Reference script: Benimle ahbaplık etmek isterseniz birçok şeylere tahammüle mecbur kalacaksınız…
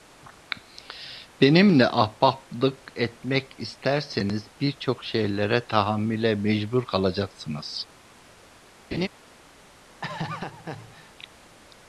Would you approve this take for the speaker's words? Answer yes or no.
yes